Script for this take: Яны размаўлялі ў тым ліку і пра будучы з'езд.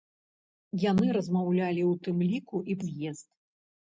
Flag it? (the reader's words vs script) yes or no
yes